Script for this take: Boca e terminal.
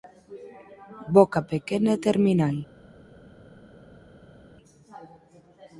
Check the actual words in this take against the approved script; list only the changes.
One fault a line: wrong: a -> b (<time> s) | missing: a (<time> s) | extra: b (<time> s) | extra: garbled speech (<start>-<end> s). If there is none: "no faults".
extra: pequena (1.5 s)